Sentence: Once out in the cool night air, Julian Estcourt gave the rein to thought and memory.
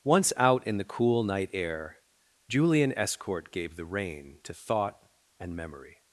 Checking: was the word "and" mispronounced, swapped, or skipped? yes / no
no